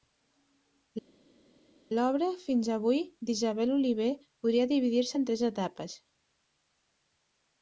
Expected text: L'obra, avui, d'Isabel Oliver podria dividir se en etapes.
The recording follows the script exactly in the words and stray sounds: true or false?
false